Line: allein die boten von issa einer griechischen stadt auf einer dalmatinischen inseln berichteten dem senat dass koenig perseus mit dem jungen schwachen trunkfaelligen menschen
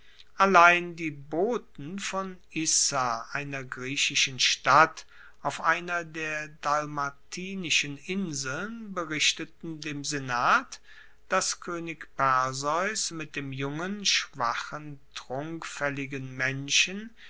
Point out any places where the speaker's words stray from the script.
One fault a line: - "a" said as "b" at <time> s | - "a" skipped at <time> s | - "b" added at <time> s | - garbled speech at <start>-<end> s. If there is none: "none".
- "der" added at 6.0 s